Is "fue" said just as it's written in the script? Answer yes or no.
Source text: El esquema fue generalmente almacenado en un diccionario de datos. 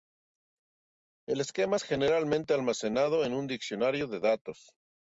no